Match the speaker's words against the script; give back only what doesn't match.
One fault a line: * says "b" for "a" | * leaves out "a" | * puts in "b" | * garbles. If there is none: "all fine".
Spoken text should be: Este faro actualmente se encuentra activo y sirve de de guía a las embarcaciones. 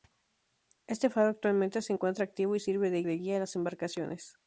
all fine